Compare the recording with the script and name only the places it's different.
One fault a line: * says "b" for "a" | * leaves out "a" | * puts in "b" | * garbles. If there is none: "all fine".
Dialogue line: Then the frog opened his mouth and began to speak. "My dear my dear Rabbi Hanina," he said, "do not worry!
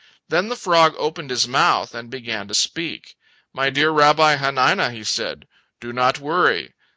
* leaves out "my dear"